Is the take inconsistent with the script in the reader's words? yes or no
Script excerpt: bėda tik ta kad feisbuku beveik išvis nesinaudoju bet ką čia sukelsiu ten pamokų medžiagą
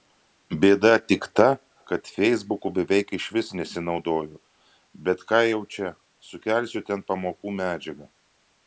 yes